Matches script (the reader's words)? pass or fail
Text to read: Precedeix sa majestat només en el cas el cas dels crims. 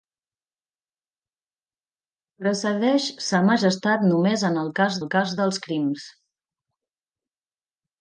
pass